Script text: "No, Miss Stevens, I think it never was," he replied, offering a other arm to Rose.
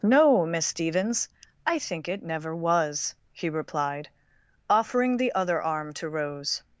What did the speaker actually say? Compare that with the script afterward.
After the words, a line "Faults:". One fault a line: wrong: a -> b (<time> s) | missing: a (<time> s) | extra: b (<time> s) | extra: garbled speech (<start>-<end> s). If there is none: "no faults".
"No, Miss Stevens, I think it never was," he replied, offering the other arm to Rose.
Faults:
wrong: a -> the (5.2 s)